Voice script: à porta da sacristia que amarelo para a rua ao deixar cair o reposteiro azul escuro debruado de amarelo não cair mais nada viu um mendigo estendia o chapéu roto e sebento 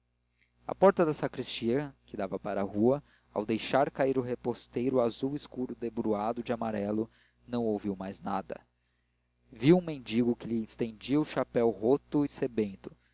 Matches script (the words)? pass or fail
fail